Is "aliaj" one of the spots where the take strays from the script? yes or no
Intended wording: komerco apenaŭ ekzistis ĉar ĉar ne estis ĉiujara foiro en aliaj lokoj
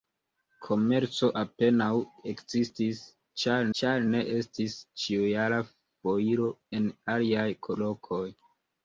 no